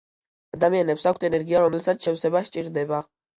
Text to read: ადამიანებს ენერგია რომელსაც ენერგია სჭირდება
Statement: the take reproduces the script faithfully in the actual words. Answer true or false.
false